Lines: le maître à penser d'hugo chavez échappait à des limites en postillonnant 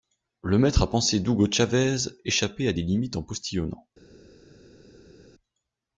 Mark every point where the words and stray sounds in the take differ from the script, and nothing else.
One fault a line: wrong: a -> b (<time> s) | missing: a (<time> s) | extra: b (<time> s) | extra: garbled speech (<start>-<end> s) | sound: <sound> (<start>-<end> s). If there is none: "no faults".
no faults